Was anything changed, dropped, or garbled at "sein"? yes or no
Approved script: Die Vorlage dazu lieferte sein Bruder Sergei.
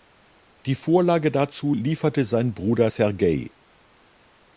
no